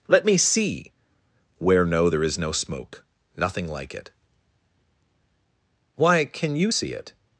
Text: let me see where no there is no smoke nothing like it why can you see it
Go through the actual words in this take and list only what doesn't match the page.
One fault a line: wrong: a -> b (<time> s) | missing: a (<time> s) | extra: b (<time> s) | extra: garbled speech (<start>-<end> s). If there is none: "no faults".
no faults